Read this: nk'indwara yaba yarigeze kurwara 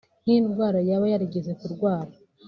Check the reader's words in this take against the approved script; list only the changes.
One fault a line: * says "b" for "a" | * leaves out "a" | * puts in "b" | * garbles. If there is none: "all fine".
all fine